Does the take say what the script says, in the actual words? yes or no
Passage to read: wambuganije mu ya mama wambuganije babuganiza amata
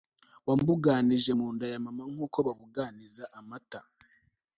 no